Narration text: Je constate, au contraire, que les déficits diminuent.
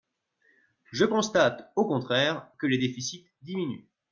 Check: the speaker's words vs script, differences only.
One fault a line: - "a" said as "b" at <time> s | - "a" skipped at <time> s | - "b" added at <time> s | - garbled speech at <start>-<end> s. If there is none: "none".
none